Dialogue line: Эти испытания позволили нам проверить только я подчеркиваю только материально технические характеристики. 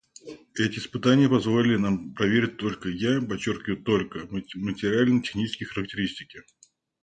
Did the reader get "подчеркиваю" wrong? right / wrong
right